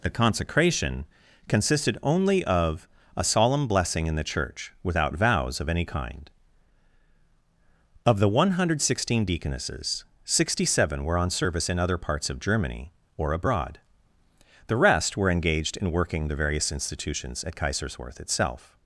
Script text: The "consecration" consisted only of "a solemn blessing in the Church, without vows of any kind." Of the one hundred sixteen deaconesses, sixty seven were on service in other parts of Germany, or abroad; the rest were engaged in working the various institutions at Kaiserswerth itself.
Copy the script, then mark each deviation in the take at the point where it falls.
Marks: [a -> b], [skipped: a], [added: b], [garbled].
The "consecration" consisted only of "a solemn blessing in the Church, without vows of any kind." Of the one hundred sixteen deaconesses, sixty seven were on service in other parts of Germany, or abroad; the rest were engaged in working the various institutions at Kaiserswerth itself.